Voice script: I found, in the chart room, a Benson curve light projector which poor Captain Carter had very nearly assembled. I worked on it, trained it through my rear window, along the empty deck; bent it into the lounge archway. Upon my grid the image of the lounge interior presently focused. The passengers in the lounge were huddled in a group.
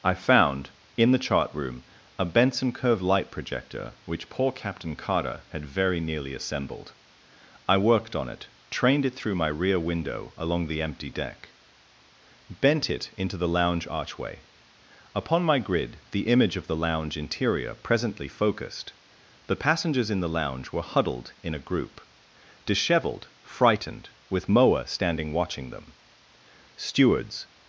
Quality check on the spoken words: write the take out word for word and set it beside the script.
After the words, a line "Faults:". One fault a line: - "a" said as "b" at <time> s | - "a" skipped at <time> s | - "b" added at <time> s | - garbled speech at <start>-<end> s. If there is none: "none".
I found, in the chart room, a Benson curve light projector which poor Captain Carter had very nearly assembled. I worked on it, trained it through my rear window, along the empty deck; bent it into the lounge archway. Upon my grid the image of the lounge interior presently focused. The passengers in the lounge were huddled in a group. Disheveled, frightened, with Moa standing watching them. Stewards
Faults:
- "Disheveled frightened with Moa standing watching them Stewards" added at 22.6 s